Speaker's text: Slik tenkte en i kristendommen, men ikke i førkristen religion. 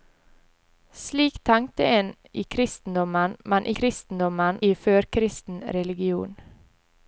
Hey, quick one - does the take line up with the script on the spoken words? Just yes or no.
no